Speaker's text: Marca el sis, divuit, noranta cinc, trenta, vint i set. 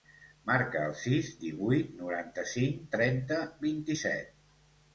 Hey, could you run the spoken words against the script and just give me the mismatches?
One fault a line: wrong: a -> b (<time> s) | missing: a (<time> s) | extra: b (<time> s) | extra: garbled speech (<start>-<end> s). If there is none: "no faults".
no faults